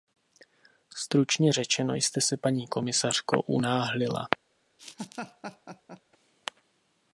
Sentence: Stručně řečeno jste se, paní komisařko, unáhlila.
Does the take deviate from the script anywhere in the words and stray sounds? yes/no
yes